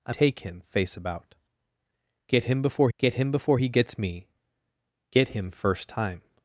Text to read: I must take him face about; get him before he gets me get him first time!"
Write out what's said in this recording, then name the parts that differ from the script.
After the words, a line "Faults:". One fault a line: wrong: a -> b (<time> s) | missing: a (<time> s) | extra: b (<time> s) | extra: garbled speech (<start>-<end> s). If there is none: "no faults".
I take him face about; get him before get him before he gets me get him first time!"
Faults:
missing: must (0.1 s)
extra: get him before (3.0 s)